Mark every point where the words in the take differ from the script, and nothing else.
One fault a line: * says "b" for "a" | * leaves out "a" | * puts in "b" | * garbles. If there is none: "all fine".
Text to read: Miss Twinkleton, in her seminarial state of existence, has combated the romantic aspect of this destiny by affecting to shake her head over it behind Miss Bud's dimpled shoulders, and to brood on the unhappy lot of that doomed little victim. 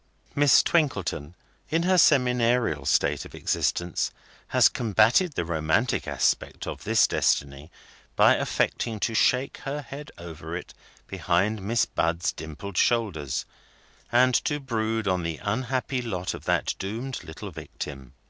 all fine